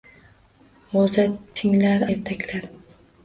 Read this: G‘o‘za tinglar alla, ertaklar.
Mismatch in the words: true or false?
true